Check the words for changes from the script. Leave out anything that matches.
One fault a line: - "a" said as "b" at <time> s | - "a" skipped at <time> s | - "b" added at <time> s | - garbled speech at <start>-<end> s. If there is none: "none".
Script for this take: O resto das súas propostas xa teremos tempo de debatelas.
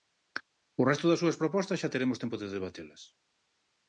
none